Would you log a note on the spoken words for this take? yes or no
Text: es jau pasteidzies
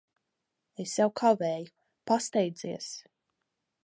yes